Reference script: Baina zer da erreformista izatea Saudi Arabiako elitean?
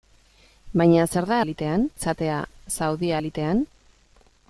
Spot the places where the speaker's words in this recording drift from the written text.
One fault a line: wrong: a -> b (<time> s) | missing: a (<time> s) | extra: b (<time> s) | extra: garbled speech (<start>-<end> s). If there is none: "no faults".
wrong: erreformista -> elitean (1.5 s)
missing: Arabiako (3.1 s)